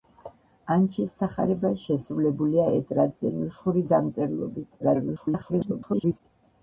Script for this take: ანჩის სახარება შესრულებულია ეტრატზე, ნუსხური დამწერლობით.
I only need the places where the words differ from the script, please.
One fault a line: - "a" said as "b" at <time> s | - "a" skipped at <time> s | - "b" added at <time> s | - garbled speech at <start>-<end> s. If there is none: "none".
- garbled speech at 4.8-6.2 s